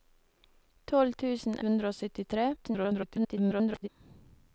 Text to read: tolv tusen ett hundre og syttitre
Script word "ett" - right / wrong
wrong